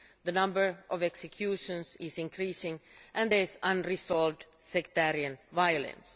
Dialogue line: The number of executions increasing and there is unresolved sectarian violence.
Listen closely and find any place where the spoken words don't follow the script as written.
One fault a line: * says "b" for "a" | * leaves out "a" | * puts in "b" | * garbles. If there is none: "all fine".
* puts in "is"